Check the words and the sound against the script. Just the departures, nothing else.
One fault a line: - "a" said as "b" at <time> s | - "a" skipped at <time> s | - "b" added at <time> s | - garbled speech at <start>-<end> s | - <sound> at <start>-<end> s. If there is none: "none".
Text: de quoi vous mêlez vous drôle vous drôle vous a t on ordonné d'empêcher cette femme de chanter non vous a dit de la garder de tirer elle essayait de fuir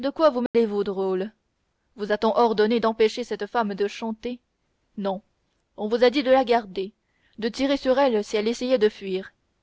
- dropout at 0.5-0.5 s
- "drôle vous" skipped at 2.1 s
- "on" added at 5.8 s
- "sur elle si" added at 7.8 s